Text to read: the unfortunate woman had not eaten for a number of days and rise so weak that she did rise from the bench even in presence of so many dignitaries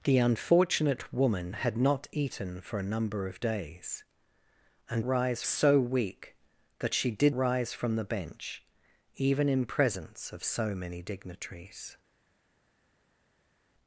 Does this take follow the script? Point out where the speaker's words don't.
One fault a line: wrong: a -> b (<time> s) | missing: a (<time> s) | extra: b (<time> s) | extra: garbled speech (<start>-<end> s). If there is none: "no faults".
no faults